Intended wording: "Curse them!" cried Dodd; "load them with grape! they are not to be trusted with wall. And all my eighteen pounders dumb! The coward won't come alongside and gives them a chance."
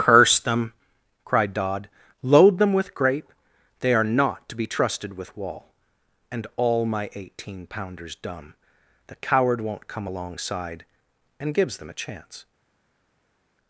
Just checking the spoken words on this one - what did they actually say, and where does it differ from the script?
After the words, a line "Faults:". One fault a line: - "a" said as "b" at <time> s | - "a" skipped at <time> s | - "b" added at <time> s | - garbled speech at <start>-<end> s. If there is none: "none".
"Curse them!" cried Dodd; "load them with grape! they are not to be trusted with wall. And all my eighteen pounders dumb! The coward won't come alongside and gives them a chance."
Faults:
none